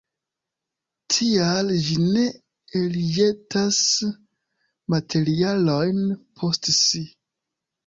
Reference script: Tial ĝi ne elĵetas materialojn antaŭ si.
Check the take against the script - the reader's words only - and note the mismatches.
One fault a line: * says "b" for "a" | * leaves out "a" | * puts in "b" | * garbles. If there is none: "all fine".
* says "post" for "antaŭ"